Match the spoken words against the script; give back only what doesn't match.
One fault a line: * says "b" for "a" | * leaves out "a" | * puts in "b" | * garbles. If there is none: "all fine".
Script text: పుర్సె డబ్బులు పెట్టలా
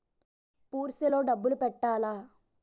* puts in "లో"